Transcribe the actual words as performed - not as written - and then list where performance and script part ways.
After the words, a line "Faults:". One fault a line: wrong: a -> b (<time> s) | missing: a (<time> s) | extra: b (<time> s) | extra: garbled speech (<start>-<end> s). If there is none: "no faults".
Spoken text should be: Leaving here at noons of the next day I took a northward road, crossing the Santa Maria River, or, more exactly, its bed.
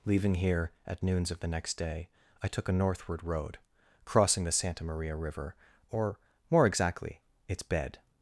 Leaving here at noons of the next day I took a northward road, crossing the Santa Maria River, or, more exactly, its bed.
Faults:
no faults